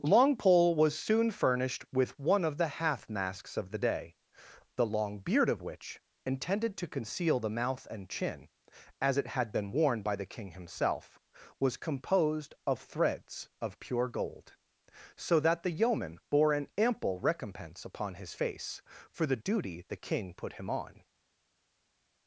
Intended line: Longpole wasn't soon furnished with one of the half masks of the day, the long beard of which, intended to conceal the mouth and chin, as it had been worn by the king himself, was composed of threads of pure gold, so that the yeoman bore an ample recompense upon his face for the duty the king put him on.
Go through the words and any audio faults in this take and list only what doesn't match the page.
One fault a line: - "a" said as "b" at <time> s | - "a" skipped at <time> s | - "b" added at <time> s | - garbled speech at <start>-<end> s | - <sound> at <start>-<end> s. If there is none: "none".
- "wasn't" said as "was" at 0.8 s